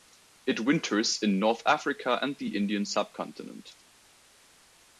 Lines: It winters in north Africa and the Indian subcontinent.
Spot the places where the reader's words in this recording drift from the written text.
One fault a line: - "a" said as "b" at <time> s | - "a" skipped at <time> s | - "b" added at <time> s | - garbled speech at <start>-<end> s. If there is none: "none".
none